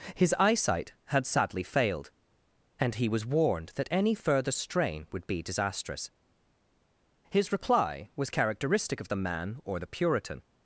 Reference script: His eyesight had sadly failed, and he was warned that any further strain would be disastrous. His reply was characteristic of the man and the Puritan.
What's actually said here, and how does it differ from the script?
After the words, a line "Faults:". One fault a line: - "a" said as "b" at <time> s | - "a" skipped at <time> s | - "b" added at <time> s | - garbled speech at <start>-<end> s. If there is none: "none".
His eyesight had sadly failed, and he was warned that any further strain would be disastrous. His reply was characteristic of the man or the Puritan.
Faults:
- "and" said as "or" at 9.6 s